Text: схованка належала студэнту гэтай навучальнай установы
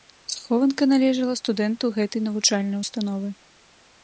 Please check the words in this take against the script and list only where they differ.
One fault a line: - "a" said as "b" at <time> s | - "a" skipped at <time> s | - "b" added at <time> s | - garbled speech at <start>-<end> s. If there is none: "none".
none